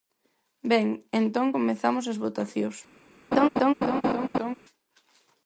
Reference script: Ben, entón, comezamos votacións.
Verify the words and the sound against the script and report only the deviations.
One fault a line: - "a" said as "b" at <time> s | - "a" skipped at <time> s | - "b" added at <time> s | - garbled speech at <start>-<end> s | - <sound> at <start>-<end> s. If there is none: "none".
- "as" added at 2.1 s
- laugh at 3.3-4.5 s